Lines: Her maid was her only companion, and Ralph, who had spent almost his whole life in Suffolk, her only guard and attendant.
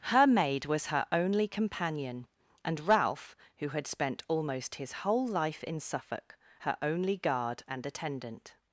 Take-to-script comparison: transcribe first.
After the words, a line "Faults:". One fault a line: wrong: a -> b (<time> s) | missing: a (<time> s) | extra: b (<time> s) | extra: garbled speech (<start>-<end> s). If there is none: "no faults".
Her maid was her only companion, and Ralph, who had spent almost his whole life in Suffolk, her only guard and attendant.
Faults:
no faults